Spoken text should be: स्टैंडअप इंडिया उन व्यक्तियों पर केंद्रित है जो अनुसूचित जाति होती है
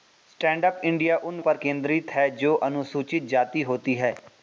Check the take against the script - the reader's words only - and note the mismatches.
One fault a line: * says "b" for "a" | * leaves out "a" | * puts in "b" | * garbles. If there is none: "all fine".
* leaves out "व्यक्तियों"